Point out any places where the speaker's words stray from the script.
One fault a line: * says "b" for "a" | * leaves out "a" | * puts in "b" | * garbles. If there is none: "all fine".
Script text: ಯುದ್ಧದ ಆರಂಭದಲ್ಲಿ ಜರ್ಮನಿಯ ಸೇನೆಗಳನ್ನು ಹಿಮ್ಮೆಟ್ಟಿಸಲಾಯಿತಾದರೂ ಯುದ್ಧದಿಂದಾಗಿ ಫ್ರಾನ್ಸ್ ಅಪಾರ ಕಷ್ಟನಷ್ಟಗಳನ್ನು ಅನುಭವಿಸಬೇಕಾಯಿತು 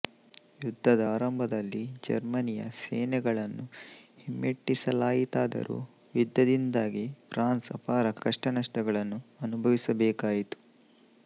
all fine